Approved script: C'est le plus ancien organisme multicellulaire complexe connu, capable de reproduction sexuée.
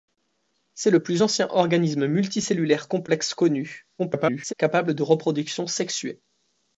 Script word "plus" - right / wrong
right